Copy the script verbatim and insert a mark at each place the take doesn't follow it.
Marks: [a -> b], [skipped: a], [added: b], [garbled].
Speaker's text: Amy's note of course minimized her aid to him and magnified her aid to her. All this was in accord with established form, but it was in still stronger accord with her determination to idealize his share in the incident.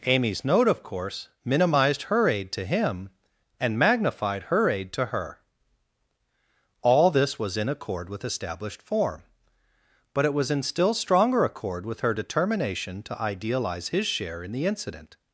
Amy's note of course minimized her aid to him and magnified her aid to her. All this was in accord with established form, but it was in still stronger accord with her determination to idealize his share in the incident.